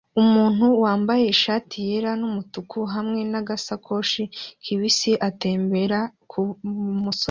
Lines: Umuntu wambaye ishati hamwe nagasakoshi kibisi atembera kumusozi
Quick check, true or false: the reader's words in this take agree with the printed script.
false